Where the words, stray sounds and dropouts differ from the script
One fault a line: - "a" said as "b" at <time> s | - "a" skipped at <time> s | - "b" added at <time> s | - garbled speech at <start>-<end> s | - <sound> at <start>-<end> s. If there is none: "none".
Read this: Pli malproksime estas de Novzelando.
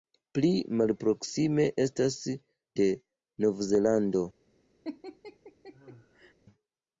- laugh at 4.8-6.3 s